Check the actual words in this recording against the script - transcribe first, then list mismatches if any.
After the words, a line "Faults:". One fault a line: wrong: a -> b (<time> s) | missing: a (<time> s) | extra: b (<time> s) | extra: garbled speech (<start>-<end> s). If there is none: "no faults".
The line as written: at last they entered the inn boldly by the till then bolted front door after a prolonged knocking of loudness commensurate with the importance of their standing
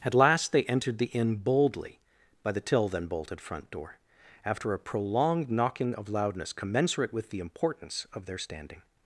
at last they entered the inn boldly by the till then bolted front door after a prolonged knocking of loudness commensurate with the importance of their standing
Faults:
no faults